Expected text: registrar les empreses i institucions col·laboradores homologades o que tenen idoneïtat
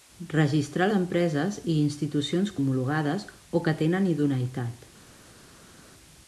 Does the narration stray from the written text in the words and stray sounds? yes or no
yes